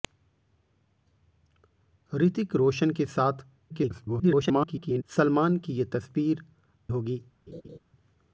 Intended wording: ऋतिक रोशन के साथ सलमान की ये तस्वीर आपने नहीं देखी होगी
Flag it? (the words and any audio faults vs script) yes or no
yes